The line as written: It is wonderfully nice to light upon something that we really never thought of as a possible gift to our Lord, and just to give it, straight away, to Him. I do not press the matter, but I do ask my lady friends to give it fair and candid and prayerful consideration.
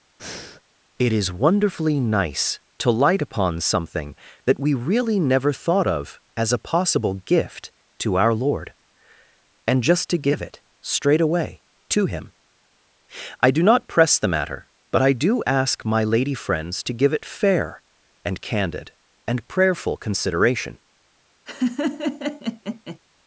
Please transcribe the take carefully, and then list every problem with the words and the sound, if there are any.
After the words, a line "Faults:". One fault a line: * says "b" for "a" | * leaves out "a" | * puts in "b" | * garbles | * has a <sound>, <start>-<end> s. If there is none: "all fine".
It is wonderfully nice to light upon something that we really never thought of as a possible gift to our Lord, and just to give it, straight away, to Him. I do not press the matter, but I do ask my lady friends to give it fair and candid and prayerful consideration.
Faults:
* has a breath, 0.2-0.6 s
* has a laugh, 21.5-23.0 s